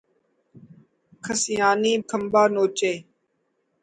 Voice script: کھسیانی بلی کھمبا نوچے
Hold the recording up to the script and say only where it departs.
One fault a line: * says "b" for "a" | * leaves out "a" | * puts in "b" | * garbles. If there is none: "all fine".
* leaves out "بلی"